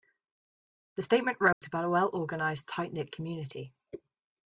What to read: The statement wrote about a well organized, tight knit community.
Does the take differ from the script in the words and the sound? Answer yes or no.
yes